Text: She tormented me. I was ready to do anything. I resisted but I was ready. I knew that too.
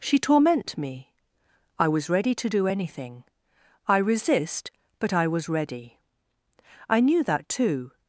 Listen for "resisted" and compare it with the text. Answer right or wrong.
wrong